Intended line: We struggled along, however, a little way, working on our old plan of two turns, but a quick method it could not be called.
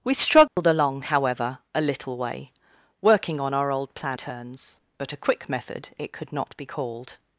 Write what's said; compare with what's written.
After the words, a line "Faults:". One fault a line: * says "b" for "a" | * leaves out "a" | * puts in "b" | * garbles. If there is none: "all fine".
We struggled along, however, a little way, working on our old plan turns, but a quick method it could not be called.
Faults:
* leaves out "of two"